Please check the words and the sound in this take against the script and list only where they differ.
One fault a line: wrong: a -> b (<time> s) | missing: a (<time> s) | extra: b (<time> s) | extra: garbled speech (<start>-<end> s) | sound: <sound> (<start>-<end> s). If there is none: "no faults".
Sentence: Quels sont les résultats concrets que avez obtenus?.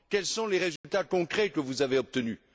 sound: dropout (0.8-0.8 s)
extra: vous (1.6 s)